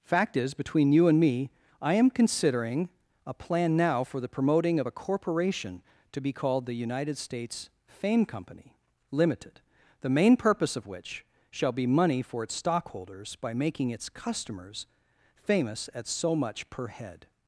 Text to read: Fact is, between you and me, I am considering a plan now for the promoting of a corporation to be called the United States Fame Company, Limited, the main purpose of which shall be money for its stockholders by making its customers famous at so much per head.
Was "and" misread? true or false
false